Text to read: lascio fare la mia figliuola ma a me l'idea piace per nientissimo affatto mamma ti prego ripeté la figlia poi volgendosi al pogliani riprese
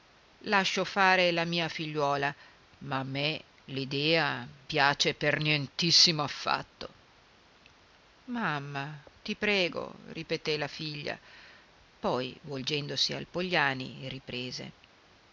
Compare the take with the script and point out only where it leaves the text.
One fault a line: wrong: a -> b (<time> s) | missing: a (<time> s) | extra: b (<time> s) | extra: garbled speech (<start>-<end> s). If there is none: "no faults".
no faults